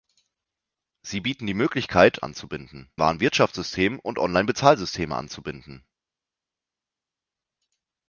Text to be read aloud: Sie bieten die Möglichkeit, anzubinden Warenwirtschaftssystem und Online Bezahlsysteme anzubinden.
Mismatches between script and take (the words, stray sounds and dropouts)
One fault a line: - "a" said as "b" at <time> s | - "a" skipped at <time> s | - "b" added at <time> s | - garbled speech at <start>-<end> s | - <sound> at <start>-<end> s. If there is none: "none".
none